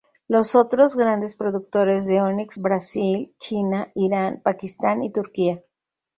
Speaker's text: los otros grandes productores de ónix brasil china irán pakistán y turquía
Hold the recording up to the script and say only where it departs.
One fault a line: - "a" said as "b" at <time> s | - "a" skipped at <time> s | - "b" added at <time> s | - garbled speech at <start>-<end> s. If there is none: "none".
none